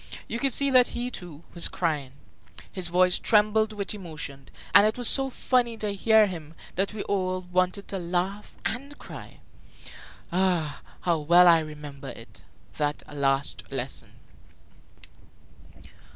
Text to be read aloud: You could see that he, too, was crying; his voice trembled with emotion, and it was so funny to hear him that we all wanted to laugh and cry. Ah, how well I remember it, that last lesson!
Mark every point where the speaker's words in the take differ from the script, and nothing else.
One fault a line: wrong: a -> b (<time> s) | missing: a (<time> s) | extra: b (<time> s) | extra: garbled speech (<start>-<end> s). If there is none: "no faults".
no faults